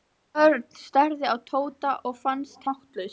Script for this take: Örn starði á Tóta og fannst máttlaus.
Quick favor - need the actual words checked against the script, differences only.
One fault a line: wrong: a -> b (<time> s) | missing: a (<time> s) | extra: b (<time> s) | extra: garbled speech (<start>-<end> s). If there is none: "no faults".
no faults